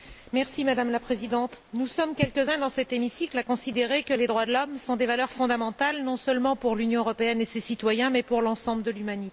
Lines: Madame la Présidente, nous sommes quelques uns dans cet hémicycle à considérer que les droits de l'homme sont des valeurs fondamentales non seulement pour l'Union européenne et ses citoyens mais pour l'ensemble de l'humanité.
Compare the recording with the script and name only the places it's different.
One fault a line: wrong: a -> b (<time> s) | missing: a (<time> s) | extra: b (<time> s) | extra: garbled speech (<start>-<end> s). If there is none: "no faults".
no faults